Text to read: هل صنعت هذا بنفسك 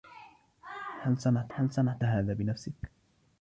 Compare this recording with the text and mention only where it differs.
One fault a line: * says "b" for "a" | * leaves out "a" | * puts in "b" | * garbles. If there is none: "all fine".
* puts in "هل صنعت"